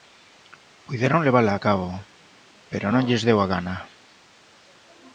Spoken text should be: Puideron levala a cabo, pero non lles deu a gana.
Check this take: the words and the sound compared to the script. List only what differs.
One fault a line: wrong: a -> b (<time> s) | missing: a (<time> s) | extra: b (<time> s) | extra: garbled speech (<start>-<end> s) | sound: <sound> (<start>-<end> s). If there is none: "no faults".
no faults